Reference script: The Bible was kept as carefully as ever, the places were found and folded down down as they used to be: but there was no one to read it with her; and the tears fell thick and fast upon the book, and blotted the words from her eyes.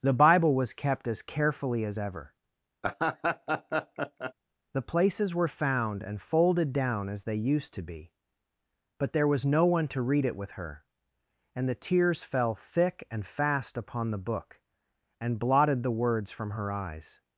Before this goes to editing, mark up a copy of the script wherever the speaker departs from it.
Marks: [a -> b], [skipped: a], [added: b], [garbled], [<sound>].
The Bible was kept as carefully as ever, [laugh] the places were found and folded down [skipped: down] as they used to be: but there was no one to read it with her; and the tears fell thick and fast upon the book, and blotted the words from her eyes.